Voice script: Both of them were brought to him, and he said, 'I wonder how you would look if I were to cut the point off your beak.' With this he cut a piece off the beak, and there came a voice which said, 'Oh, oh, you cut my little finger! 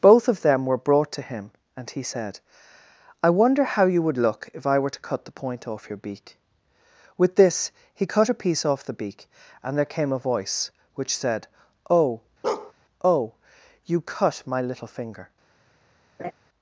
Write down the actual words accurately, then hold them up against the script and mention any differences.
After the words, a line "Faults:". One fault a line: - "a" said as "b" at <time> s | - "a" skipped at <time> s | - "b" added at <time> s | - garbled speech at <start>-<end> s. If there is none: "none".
Both of them were brought to him, and he said, 'I wonder how you would look if I were to cut the point off your beak.' With this he cut a piece off the beak, and there came a voice which said, 'Oh, oh, you cut my little finger!
Faults:
none